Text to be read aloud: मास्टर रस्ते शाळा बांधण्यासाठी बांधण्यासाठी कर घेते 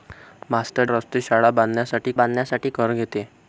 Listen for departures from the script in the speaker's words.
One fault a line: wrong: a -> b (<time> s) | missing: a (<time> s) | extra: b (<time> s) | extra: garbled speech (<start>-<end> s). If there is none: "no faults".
no faults